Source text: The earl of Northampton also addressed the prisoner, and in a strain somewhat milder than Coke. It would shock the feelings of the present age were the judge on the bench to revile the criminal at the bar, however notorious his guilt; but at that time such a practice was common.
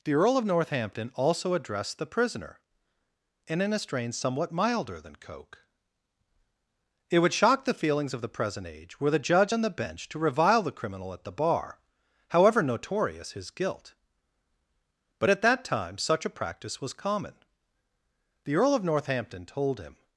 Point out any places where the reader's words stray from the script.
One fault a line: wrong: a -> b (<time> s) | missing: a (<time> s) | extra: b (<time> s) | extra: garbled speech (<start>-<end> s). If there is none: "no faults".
extra: The earl of Northampton told him (18.4 s)